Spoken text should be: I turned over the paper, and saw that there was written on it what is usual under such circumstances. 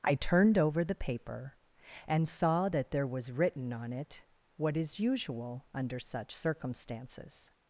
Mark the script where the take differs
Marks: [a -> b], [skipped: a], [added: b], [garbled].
I turned over the paper, and saw that there was written on it what is usual under such circumstances.